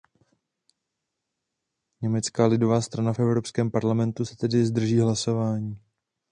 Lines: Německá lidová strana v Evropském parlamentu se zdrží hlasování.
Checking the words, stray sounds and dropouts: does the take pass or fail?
fail